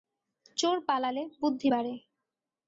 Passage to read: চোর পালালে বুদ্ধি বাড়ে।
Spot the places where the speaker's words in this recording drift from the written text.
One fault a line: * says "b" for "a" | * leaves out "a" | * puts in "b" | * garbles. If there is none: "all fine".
all fine